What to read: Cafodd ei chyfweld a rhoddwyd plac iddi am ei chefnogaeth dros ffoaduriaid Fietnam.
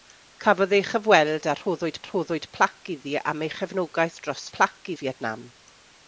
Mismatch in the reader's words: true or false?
true